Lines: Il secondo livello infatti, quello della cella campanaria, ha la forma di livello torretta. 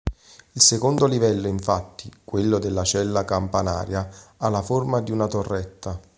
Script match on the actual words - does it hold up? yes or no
no